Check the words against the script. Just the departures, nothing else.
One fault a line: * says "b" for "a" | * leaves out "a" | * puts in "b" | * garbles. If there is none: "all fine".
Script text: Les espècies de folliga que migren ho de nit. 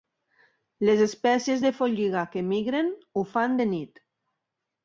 * puts in "fan"